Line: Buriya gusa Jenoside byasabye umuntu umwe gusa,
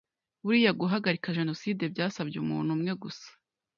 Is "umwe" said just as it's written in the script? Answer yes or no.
yes